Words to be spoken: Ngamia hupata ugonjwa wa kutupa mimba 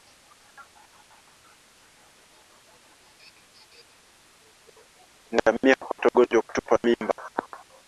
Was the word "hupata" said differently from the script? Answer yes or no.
no